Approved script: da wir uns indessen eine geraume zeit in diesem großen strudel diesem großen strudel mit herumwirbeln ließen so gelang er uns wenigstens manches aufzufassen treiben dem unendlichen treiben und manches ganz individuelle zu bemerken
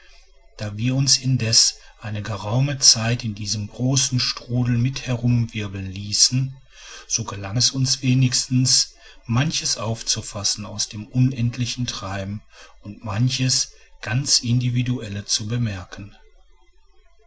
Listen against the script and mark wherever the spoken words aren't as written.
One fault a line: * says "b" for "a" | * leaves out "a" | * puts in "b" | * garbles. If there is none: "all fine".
* leaves out "diesem großen strudel"
* says "es" for "er"
* says "aus" for "treiben"